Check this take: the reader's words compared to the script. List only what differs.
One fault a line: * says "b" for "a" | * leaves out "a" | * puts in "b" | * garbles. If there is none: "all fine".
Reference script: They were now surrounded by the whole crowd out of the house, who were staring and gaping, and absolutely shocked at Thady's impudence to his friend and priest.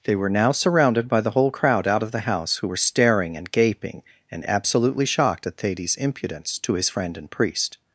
all fine